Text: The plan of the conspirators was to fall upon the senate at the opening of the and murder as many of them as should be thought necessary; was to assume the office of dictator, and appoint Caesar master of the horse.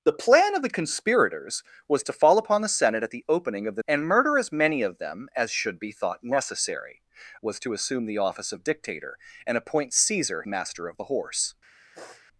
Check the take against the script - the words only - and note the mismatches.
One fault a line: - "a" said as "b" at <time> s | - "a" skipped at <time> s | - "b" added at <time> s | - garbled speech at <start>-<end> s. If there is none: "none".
none